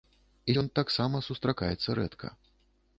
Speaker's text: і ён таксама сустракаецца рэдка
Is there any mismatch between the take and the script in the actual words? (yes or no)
no